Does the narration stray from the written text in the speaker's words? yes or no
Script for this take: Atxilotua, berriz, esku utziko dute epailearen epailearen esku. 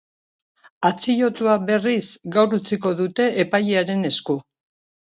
yes